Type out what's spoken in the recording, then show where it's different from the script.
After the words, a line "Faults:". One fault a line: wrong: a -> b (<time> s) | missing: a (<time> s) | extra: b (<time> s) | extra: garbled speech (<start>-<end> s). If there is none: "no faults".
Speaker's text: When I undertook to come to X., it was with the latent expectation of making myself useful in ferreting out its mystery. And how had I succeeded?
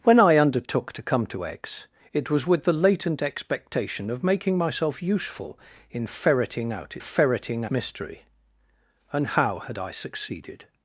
When I undertook to come to X., it was with the latent expectation of making myself useful in ferreting out ferreting mystery. And how had I succeeded?
Faults:
wrong: its -> ferreting (7.0 s)